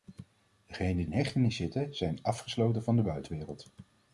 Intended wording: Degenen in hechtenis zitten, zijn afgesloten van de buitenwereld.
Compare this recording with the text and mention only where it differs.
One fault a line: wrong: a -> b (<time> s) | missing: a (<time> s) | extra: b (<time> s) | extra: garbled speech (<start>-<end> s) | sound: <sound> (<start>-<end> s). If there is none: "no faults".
no faults